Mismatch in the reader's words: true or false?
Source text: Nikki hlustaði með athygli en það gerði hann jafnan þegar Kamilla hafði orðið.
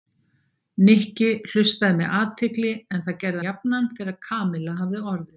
true